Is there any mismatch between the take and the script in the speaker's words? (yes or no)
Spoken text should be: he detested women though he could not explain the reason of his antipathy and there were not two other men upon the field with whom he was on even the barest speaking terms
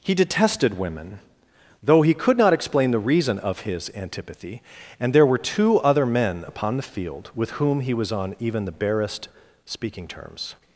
yes